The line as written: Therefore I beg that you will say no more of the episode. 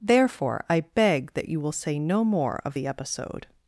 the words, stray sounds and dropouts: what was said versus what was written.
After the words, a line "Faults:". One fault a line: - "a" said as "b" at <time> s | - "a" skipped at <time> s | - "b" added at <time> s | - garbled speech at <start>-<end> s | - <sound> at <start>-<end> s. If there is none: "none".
Therefore I beg that you will say no more of the episode.
Faults:
none